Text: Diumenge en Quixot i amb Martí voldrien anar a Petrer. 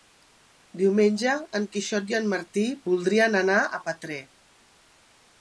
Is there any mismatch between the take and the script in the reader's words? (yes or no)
yes